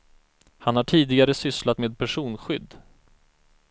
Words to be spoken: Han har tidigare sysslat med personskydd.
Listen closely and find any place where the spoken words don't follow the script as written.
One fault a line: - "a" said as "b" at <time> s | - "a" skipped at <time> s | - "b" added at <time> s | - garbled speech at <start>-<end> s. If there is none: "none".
none